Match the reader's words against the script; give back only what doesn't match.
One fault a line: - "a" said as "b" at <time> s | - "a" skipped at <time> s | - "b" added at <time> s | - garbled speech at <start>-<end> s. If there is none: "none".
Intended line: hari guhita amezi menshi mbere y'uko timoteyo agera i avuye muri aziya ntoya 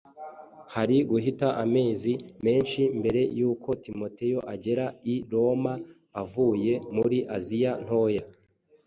- "roma" added at 5.3 s